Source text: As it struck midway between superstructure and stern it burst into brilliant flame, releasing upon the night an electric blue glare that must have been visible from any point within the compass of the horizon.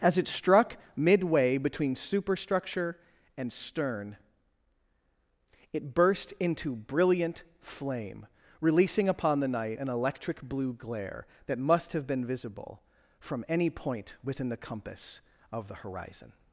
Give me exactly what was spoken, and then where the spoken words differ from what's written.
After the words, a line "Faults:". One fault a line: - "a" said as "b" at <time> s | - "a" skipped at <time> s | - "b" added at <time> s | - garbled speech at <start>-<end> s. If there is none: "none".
As it struck midway between superstructure and stern it burst into brilliant flame, releasing upon the night an electric blue glare that must have been visible from any point within the compass of the horizon.
Faults:
none